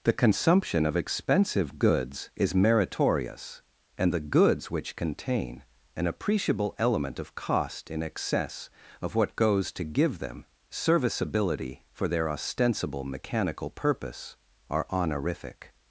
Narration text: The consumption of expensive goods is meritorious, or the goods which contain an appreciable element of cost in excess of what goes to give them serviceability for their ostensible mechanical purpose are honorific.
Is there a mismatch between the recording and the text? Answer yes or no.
yes